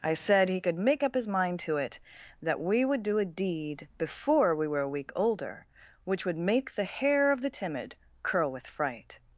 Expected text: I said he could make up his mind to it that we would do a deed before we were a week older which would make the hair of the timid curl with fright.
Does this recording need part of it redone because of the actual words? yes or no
no